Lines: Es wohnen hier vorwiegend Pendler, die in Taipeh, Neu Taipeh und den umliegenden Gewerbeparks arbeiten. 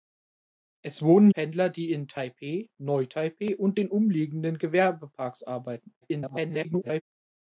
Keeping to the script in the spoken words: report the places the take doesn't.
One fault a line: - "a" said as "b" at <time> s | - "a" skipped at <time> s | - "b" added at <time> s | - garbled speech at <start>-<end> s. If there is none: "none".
- "hier vorwiegend" skipped at 1.3 s
- garbled speech at 6.0-7.0 s